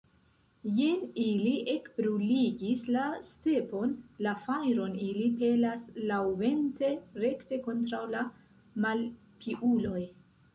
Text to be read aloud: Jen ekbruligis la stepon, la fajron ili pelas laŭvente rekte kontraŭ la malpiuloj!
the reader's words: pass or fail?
fail